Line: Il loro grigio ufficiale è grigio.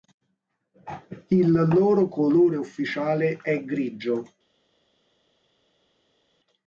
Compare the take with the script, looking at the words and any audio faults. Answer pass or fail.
fail